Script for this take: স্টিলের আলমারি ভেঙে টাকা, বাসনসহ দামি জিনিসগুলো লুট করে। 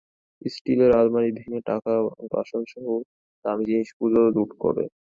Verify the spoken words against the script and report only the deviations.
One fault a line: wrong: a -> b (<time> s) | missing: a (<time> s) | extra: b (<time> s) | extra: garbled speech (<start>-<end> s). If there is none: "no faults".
no faults